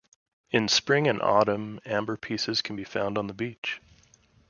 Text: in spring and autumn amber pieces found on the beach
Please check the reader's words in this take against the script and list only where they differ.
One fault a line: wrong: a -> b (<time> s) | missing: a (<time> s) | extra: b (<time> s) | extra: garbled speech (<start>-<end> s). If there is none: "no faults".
extra: can be (2.6 s)